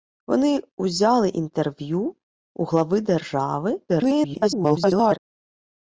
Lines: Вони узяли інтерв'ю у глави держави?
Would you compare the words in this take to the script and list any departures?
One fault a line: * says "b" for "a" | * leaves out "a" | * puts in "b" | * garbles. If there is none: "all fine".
* garbles